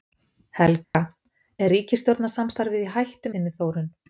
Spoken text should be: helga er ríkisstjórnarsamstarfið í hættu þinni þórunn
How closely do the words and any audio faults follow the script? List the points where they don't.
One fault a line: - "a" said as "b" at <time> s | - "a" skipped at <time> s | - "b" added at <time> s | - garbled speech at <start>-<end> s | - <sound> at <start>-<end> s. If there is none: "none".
- dropout at 0.8-0.9 s